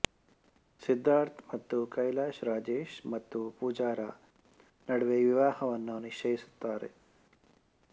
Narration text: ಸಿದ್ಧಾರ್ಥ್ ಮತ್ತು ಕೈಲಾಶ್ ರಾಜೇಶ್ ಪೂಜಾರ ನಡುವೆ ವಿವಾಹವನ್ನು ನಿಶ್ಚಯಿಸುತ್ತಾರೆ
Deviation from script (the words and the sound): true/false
true